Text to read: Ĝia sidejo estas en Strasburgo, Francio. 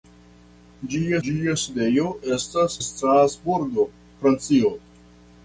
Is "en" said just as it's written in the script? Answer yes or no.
no